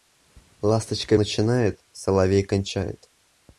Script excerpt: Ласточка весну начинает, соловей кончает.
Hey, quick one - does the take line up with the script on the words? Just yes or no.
no